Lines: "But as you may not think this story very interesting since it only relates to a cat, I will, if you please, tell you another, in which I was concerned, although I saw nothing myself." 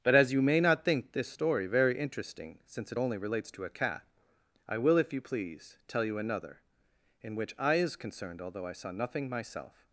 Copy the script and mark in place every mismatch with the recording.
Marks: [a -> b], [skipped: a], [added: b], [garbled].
"But as you may not think this story very interesting since it only relates to a cat, I will, if you please, tell you another, in which I [was -> is] concerned, although I saw nothing myself."